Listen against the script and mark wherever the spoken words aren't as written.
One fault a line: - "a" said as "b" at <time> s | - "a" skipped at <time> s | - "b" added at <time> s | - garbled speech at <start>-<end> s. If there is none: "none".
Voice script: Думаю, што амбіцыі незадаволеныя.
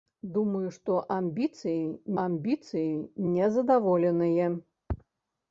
- "амбіцыі" added at 2.2 s